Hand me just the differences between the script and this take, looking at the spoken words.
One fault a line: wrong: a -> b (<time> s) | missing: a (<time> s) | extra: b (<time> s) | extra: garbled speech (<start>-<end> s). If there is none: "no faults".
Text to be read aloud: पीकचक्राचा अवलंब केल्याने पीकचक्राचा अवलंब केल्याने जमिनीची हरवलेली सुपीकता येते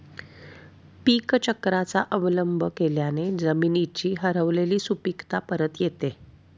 missing: पीकचक्राचा अवलंब केल्याने (3.3 s)
extra: परत (5.5 s)